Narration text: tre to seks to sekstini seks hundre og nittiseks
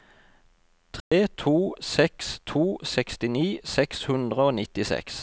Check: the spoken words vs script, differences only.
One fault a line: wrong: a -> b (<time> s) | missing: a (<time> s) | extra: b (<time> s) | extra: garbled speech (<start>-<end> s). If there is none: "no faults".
no faults